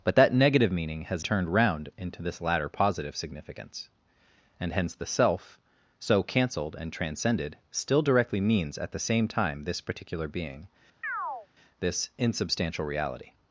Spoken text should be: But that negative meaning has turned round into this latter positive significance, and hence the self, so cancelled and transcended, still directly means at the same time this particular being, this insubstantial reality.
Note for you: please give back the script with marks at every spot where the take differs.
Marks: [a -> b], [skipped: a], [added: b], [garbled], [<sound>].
But that negative meaning has turned round into this latter positive significance, and hence the self, so cancelled and transcended, still directly means at the same time this particular being, [chirp] this insubstantial reality.